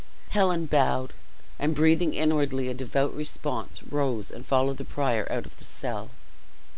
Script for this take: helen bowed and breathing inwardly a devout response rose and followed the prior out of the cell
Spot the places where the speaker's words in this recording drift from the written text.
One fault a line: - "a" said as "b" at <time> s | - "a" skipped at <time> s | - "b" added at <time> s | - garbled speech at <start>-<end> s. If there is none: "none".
none